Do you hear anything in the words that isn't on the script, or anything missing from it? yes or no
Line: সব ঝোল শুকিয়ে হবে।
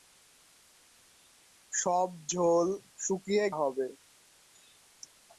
no